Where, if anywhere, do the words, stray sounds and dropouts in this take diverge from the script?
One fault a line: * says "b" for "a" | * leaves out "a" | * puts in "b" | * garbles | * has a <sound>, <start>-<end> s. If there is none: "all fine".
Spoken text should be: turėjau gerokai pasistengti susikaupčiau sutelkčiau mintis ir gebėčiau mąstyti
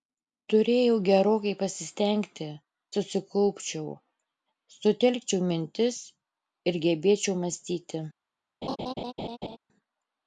* has a laugh, 8.6-9.6 s